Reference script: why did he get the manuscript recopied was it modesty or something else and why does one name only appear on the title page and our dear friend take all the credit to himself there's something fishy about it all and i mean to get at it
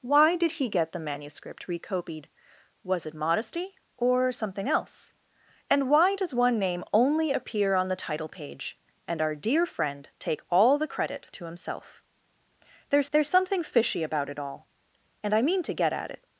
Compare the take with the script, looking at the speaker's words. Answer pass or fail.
fail